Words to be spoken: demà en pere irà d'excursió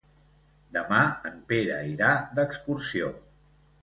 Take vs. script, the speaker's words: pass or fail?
pass